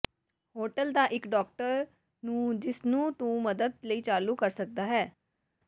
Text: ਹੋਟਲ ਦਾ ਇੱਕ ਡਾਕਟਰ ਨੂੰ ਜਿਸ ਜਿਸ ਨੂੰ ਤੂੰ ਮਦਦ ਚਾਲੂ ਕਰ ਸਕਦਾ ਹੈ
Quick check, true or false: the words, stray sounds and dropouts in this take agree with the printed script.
false